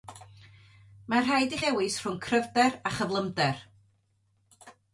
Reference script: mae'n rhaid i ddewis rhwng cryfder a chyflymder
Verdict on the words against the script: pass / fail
pass